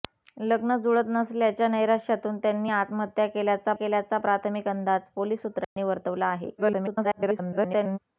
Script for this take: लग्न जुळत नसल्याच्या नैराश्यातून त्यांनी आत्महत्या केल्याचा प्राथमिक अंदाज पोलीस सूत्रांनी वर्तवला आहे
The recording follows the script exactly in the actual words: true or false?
false